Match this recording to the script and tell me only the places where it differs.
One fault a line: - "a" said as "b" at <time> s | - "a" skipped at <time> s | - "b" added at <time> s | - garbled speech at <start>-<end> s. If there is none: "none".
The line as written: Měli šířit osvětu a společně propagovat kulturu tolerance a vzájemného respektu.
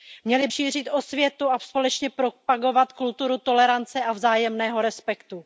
none